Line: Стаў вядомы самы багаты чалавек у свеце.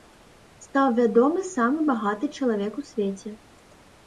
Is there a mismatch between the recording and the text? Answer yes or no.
no